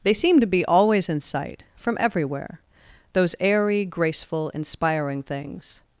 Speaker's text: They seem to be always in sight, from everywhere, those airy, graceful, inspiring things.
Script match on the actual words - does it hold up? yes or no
yes